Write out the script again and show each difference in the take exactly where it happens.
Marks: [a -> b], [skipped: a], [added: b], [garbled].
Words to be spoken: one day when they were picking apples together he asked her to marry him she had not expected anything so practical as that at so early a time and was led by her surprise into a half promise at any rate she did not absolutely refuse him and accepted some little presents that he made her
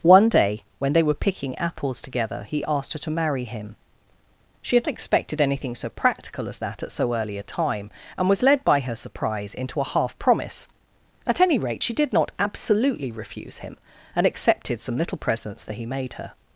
one day when they were picking apples together he asked her to marry him she had [skipped: not] expected anything so practical as that at so early a time and was led by her surprise into a half promise at any rate she did not absolutely refuse him and accepted some little presents that he made her